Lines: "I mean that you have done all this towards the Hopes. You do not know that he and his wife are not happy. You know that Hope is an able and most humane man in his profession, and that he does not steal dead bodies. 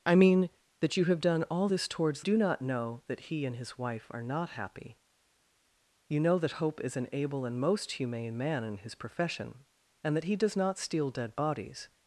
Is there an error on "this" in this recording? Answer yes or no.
no